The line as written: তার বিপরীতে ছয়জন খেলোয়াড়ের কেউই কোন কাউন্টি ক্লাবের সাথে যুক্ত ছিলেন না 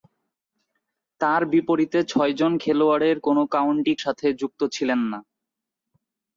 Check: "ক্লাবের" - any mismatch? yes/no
yes